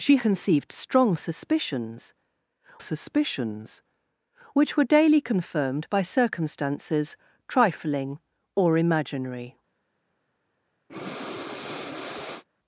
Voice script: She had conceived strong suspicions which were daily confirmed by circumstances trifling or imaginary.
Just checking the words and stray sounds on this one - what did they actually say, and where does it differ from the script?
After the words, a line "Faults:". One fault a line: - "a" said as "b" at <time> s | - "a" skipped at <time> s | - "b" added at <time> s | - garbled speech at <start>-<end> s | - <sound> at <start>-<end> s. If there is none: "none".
She conceived strong suspicions suspicions which were daily confirmed by circumstances trifling or imaginary.
Faults:
- "had" skipped at 0.2 s
- "suspicions" added at 2.8 s
- breath at 10.9-12.4 s